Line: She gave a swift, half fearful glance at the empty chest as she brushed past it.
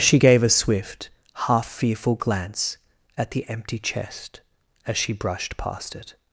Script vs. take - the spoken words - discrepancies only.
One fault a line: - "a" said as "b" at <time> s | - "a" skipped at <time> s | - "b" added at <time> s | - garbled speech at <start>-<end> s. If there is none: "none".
none